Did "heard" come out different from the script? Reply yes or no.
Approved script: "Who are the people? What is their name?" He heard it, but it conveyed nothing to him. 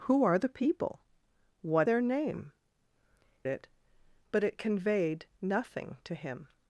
yes